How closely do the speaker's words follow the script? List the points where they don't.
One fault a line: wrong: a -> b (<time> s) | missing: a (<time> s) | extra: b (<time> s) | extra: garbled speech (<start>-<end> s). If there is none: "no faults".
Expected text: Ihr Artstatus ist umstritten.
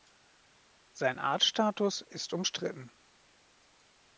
wrong: Ihr -> Sein (0.9 s)